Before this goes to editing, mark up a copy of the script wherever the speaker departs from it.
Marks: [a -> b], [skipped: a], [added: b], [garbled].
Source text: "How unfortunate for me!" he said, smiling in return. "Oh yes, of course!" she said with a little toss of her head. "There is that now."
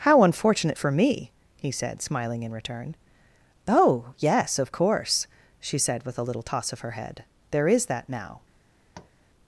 "How unfortunate for me!" he said, smiling in return. "Oh yes, of course!" she said with a little toss of her head. "There is that now."